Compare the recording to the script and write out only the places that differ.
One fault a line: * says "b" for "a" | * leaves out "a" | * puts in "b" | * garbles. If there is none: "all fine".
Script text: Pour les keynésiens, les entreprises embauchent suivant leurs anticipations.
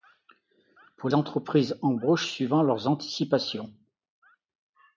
* leaves out "les keynésiens les"